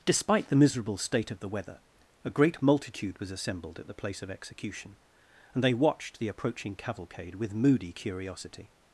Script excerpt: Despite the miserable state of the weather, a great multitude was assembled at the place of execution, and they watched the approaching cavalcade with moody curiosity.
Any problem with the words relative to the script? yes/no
no